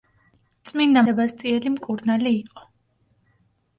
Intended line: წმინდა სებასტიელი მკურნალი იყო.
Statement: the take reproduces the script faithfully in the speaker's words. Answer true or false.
true